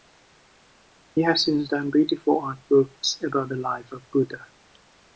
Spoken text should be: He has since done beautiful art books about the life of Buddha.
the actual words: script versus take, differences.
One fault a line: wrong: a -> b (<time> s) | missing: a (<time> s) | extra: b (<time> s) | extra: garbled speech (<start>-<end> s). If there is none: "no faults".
no faults